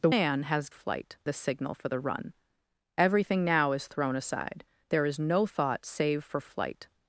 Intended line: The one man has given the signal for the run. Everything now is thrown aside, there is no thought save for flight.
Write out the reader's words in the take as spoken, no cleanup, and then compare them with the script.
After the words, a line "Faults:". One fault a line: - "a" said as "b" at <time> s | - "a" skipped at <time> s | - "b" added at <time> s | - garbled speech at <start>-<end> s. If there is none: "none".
The man has flight the signal for the run. Everything now is thrown aside, there is no thought save for flight.
Faults:
- "one" skipped at 0.1 s
- "given" said as "flight" at 0.7 s